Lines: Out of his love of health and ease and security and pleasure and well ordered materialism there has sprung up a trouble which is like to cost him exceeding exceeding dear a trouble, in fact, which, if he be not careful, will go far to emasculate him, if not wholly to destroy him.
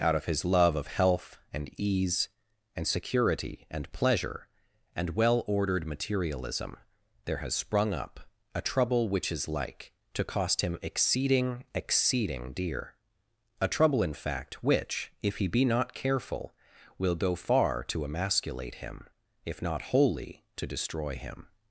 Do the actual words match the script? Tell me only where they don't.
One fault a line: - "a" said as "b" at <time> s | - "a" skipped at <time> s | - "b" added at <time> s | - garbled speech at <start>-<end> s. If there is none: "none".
none